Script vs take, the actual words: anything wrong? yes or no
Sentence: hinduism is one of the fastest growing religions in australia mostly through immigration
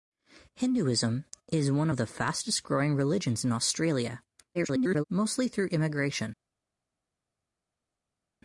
yes